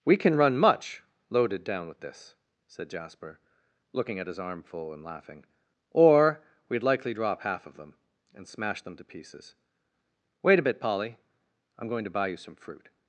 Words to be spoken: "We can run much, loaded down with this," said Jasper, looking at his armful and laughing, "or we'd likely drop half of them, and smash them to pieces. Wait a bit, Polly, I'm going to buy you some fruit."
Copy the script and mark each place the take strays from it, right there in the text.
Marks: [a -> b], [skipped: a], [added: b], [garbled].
"We can run much, loaded down with this," said Jasper, looking at his armful and laughing, "or we'd likely drop half of them, and smash them to pieces. Wait a bit, Polly, I'm going to buy you some fruit."